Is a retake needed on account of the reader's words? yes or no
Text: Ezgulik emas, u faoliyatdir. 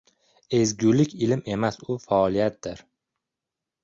yes